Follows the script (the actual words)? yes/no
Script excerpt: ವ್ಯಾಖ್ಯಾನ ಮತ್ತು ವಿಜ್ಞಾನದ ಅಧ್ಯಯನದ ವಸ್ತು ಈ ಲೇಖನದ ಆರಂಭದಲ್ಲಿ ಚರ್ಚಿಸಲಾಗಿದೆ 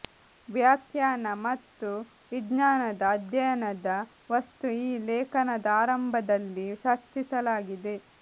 yes